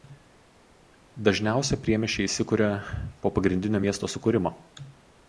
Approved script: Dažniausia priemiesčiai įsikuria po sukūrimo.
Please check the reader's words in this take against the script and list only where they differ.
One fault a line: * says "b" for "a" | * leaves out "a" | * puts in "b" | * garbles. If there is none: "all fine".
* puts in "pagrindinio miesto"